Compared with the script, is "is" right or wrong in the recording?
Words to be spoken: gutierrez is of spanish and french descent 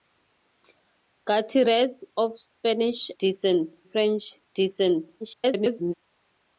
wrong